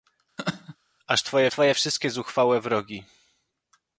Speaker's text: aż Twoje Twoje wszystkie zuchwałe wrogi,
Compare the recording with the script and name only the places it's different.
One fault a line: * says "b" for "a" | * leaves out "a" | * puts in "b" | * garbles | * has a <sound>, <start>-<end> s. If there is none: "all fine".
* has a laugh, 0.4-0.8 s